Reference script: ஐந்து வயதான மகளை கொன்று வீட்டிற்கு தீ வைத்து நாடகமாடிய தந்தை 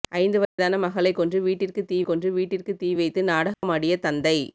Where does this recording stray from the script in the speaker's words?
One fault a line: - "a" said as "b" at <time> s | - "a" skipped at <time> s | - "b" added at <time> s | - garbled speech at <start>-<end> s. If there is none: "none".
- "கொன்று வீட்டிற்கு தீ" added at 2.0 s